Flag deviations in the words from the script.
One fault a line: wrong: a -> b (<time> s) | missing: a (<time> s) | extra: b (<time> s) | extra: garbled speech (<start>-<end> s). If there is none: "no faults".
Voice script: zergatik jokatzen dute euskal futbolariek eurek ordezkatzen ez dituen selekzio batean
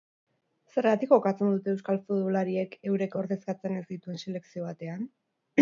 no faults